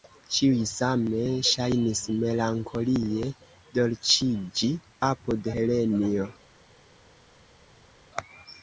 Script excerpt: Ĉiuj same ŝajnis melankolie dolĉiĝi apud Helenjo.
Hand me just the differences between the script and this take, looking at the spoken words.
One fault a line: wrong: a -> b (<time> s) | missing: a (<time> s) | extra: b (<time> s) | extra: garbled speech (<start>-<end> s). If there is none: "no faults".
no faults